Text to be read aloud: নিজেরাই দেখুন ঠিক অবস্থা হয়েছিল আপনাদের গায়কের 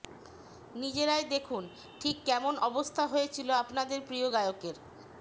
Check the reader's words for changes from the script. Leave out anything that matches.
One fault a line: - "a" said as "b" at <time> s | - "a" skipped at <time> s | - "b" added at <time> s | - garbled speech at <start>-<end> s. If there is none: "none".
- "কেমন" added at 2.2 s
- "প্রিয়" added at 4.1 s